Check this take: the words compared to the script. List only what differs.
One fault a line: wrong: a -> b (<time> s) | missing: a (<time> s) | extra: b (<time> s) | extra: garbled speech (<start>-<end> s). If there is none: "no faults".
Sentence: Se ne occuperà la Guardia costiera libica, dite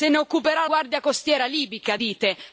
missing: la (0.7 s)